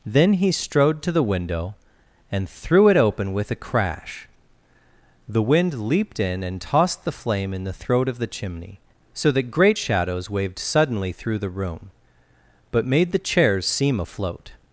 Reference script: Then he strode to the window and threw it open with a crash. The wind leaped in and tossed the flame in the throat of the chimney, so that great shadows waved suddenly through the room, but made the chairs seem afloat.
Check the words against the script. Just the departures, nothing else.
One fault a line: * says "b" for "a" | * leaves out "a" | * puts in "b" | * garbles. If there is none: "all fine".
all fine